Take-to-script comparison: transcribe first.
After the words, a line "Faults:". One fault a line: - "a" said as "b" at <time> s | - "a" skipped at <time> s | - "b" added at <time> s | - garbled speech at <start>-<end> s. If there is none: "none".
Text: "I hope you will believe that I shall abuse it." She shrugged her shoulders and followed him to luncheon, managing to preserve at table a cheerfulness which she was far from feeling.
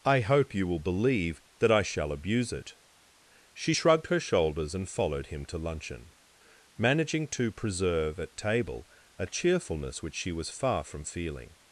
"I hope you will believe that I shall abuse it." She shrugged her shoulders and followed him to luncheon, managing to preserve at table a cheerfulness which she was far from feeling.
Faults:
none